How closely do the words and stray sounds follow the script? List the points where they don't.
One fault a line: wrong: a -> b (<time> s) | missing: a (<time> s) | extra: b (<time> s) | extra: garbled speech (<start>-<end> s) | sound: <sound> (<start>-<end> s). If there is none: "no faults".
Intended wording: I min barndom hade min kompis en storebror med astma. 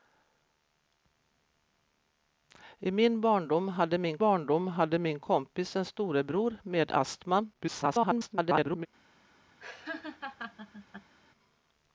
extra: barndom hade min (4.2 s)
extra: garbled speech (7.5-8.9 s)
sound: laugh (9.6-11.1 s)